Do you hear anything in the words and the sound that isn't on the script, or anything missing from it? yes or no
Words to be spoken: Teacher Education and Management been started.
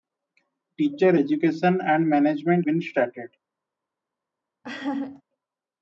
yes